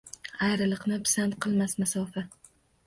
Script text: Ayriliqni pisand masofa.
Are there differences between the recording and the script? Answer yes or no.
yes